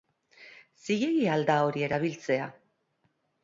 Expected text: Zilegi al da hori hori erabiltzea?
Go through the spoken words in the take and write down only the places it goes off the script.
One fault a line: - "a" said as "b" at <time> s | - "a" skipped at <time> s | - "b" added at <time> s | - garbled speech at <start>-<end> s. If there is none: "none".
- "hori" skipped at 1.9 s